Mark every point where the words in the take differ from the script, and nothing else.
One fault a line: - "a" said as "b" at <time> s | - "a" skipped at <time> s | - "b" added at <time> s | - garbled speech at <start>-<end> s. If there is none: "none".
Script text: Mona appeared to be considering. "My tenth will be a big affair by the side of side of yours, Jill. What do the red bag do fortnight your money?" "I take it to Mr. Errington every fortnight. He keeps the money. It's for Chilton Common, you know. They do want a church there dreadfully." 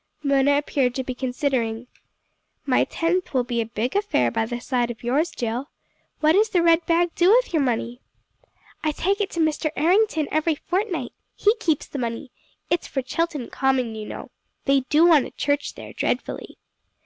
- "side of" skipped at 5.0 s
- "do" said as "does" at 6.3 s
- "fortnight" said as "with" at 7.3 s